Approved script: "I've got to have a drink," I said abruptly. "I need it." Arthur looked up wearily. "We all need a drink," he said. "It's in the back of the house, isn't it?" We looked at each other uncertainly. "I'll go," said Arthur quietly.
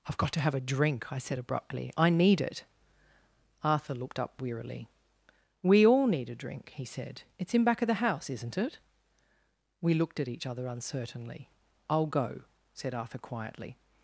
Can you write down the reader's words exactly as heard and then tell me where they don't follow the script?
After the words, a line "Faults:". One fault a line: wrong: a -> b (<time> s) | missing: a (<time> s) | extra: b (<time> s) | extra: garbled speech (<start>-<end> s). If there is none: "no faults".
"I've got to have a drink," I said abruptly. "I need it." Arthur looked up wearily. "We all need a drink," he said. "It's in back of the house, isn't it?" We looked at each other uncertainly. "I'll go," said Arthur quietly.
Faults:
missing: the (7.6 s)